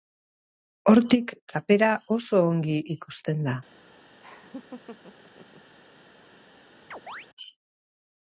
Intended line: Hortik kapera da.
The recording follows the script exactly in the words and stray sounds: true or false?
false